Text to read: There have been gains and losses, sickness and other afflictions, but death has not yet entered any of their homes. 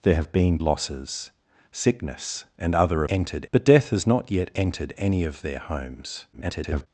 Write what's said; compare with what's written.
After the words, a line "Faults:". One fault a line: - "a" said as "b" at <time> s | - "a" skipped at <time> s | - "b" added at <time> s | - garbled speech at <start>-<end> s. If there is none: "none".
There have been losses, sickness and other entered, but death has not yet entered any of their homes. [garbled]
Faults:
- "gains and" skipped at 0.6 s
- "afflictions" said as "entered" at 3.1 s
- garbled speech at 6.3-6.9 s